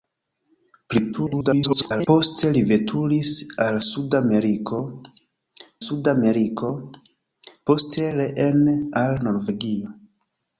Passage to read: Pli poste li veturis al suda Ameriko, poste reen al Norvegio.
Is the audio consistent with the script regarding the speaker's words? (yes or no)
no